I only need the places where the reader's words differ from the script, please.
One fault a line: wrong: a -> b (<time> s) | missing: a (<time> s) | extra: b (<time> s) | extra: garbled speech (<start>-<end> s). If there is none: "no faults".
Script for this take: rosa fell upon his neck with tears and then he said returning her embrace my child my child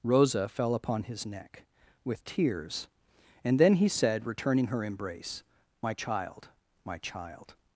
no faults